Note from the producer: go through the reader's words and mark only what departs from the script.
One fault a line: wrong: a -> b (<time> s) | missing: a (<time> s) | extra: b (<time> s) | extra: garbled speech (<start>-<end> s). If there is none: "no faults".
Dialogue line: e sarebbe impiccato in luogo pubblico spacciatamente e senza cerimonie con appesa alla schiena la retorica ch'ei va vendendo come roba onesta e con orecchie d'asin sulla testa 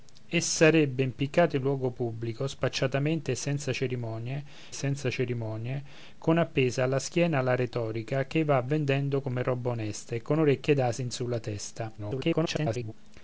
extra: senza cerimonie (4.7 s)
extra: garbled speech (12.0-12.9 s)